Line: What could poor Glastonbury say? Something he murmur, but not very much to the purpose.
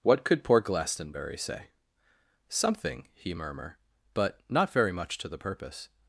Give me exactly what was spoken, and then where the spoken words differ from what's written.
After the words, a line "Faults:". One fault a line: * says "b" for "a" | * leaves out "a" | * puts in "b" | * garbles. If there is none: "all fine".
What could poor Glastonbury say? Something he murmur, but not very much to the purpose.
Faults:
all fine